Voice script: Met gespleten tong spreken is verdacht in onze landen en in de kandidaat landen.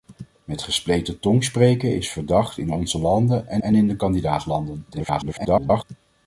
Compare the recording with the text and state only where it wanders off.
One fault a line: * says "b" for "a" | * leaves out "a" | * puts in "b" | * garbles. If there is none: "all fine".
* puts in "en"
* garbles